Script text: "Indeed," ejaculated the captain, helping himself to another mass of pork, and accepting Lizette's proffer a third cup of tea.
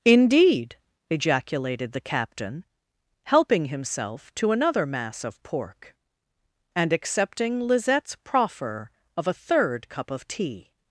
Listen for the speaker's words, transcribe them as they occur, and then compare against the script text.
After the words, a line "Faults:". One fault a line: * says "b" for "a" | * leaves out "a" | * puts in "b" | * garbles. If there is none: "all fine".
"Indeed," ejaculated the captain, helping himself to another mass of pork, and accepting Lizette's proffer of a third cup of tea.
Faults:
* puts in "of"